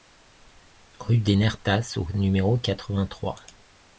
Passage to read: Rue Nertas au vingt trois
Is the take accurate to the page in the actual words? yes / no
no